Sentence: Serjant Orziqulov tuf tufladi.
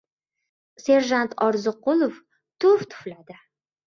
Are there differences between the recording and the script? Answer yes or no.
no